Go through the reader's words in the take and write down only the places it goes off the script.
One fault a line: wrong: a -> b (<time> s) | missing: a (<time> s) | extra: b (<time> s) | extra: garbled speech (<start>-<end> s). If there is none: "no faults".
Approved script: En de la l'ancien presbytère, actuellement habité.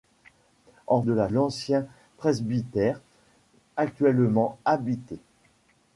no faults